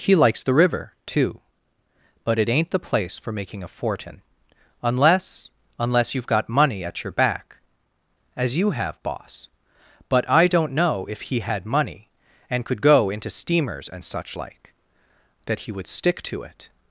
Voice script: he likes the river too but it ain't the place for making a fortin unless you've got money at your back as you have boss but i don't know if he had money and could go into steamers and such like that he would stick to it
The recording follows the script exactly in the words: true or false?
false